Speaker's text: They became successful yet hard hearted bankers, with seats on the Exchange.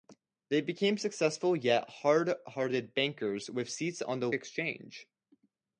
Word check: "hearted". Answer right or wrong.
right